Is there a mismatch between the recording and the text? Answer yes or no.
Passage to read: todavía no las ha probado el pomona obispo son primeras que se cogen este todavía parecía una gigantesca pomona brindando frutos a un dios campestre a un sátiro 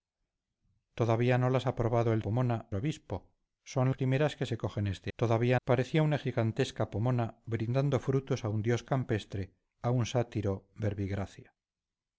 no